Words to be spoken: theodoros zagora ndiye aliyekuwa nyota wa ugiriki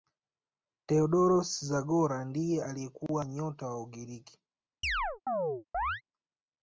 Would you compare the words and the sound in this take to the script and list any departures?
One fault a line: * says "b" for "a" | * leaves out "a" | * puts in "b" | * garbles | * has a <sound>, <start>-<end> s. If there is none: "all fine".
* has a chirp, 4.8-6.0 s